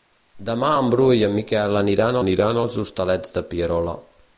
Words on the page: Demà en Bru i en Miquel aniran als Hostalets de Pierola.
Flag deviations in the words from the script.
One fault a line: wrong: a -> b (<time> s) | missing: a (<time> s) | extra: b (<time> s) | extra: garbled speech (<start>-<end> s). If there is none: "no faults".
extra: aniran (2.2 s)